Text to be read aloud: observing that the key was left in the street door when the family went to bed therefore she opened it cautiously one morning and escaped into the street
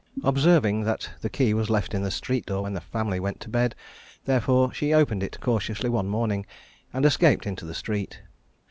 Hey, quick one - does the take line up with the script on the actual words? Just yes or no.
yes